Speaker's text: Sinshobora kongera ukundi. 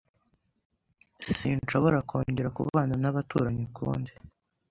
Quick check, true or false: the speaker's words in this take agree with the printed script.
false